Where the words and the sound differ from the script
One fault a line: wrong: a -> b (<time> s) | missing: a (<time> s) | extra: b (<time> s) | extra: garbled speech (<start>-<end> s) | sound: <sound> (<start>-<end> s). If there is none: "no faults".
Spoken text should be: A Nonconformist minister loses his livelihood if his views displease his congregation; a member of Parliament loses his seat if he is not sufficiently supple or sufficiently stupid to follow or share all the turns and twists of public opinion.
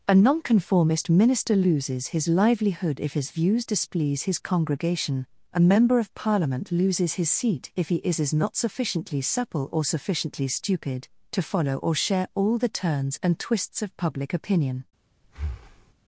extra: is (8.2 s)
sound: breath (15.2-15.9 s)